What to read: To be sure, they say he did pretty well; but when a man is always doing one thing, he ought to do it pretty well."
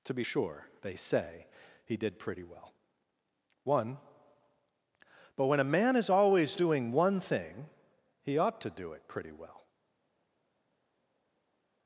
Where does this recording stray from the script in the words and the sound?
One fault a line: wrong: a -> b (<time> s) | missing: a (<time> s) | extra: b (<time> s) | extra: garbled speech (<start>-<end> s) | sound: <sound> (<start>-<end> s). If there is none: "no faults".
extra: one (3.6 s)